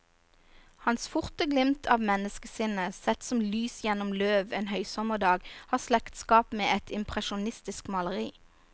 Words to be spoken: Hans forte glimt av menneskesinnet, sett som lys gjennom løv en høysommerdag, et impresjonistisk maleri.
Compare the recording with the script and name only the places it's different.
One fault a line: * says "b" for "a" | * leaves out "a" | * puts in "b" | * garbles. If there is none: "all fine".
* puts in "har slektskap med"